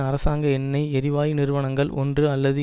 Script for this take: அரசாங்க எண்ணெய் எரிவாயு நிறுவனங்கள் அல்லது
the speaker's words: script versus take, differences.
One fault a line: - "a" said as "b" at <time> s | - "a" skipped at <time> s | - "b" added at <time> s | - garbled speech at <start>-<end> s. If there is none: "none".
- "ஒன்று" added at 1.9 s